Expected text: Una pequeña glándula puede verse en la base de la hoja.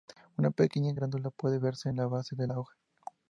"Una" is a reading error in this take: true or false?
false